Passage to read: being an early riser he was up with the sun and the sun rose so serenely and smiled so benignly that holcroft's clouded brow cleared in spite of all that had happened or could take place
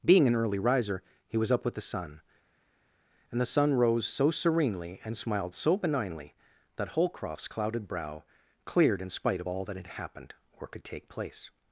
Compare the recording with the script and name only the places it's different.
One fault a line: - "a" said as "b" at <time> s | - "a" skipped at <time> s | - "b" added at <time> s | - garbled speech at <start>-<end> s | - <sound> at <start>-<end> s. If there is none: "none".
none